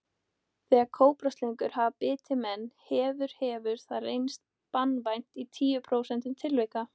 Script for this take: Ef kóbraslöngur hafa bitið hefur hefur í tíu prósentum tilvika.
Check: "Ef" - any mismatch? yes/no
yes